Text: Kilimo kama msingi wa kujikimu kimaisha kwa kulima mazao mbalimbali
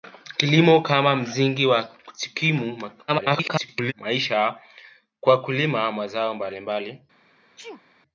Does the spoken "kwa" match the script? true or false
true